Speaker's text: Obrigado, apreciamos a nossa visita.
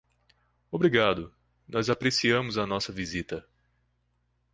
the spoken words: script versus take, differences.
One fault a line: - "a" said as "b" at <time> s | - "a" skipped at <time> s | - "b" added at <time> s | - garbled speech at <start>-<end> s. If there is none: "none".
- "nós" added at 1.7 s